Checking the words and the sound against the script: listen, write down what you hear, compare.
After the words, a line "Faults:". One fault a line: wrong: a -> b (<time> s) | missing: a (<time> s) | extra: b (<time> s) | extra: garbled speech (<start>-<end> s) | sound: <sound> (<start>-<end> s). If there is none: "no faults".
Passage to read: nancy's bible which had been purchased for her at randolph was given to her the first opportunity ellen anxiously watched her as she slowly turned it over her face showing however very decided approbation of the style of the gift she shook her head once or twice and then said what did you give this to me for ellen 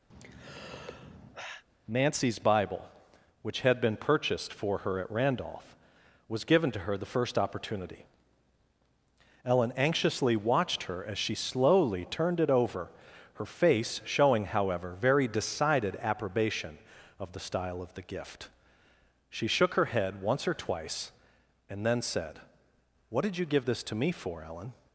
nancy's bible which had been purchased for her at randolph was given to her the first opportunity ellen anxiously watched her as she slowly turned it over her face showing however very decided approbation of the style of the gift she shook her head once or twice and then said what did you give this to me for ellen
Faults:
sound: sigh (0.1-1.6 s)